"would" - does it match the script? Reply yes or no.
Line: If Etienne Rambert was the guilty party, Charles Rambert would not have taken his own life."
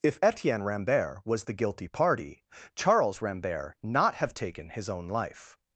no